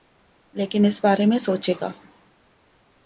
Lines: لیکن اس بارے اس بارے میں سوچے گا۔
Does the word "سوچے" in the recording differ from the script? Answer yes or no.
no